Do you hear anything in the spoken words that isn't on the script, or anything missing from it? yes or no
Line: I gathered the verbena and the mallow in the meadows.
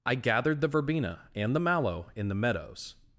no